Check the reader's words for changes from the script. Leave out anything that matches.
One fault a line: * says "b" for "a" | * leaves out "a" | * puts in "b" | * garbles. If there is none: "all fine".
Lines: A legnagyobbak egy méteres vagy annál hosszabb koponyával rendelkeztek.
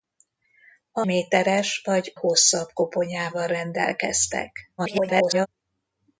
* leaves out "legnagyobbak egy"
* leaves out "annál"
* garbles